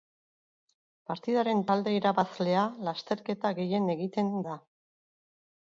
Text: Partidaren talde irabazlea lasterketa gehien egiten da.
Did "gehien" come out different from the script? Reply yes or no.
no